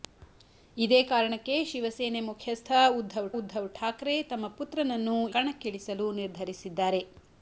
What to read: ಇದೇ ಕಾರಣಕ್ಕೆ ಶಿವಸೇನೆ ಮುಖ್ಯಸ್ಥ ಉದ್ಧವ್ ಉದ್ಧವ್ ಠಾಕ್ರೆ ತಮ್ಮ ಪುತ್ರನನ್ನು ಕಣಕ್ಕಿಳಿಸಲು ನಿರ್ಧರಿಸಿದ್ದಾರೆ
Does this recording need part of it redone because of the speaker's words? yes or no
no